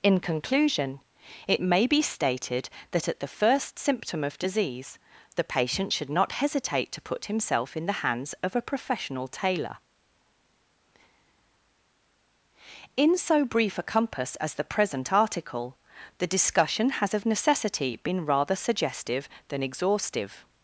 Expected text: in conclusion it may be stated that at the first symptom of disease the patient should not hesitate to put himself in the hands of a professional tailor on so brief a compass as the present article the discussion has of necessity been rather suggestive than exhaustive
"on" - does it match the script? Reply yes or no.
no